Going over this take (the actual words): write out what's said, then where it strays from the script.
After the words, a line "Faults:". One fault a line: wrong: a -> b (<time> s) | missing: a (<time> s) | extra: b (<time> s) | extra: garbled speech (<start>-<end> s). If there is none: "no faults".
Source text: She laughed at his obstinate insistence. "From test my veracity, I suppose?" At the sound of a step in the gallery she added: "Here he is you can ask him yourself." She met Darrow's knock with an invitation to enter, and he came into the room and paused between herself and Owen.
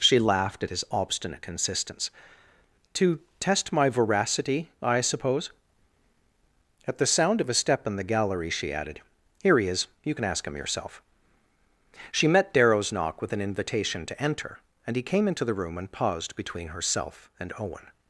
She laughed at his obstinate insistence. "To test my veracity, I suppose?" At the sound of a step in the gallery she added: "Here he is you can ask him yourself." She met Darrow's knock with an invitation to enter, and he came into the room and paused between herself and Owen.
Faults:
wrong: From -> To (2.9 s)